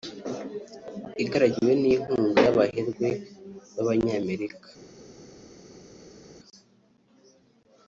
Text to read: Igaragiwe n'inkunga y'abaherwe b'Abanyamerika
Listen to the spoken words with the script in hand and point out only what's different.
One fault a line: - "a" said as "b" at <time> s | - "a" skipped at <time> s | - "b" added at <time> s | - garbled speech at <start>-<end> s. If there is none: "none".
none